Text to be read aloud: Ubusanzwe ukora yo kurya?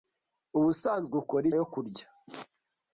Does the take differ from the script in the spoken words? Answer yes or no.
no